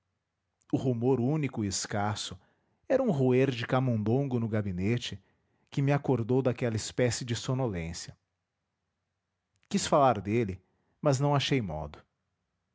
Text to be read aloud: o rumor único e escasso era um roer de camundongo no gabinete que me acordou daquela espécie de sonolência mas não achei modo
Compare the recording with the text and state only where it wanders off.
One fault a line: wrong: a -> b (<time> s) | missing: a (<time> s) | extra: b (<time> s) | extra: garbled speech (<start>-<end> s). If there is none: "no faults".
extra: quis falar dele (9.7 s)